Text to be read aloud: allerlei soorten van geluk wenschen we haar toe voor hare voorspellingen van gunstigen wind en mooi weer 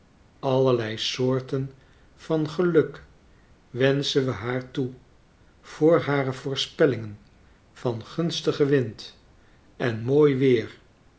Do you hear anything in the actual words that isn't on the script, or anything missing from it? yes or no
no